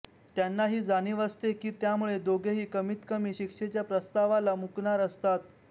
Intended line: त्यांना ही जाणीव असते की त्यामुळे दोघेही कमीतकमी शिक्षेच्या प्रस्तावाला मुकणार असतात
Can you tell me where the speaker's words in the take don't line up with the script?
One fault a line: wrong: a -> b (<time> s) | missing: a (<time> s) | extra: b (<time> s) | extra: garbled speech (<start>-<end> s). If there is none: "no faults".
no faults